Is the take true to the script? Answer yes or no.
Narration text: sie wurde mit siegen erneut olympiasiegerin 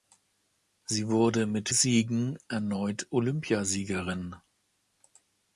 yes